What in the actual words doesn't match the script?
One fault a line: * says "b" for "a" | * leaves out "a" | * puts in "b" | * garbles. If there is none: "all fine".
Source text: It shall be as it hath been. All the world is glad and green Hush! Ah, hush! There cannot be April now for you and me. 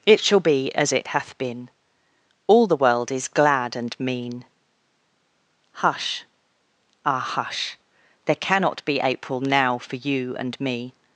* says "mean" for "green"